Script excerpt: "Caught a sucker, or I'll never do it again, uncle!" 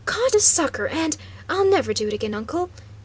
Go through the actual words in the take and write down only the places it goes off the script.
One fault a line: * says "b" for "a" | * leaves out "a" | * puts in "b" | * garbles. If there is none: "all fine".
* says "and" for "or"